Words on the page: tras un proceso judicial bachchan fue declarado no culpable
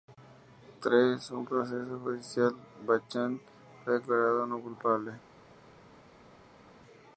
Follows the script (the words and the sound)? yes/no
yes